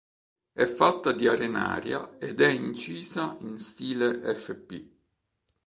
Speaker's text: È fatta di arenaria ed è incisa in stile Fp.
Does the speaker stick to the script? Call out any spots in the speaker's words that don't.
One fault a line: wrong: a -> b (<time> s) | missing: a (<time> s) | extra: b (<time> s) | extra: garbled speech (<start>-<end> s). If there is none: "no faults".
no faults